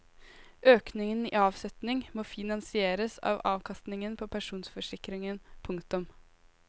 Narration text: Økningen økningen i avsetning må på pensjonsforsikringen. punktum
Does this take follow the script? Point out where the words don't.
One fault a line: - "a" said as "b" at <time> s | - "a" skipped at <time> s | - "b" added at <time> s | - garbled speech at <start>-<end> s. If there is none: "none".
- "økningen" skipped at 1.2 s
- "finansieres av avkastningen" added at 2.3 s